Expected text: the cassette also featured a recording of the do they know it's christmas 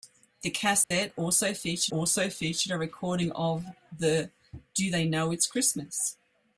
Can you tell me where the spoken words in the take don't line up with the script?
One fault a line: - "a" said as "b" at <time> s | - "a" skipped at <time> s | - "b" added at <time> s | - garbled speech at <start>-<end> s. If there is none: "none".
- "also featured" added at 1.9 s